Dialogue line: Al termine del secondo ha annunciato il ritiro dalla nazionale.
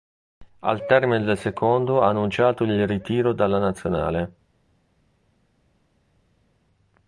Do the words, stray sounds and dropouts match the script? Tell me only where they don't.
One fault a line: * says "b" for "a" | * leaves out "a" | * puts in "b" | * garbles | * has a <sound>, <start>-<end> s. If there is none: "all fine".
all fine